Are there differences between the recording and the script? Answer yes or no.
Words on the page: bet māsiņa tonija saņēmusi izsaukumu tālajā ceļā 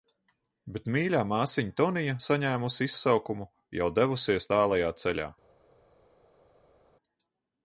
yes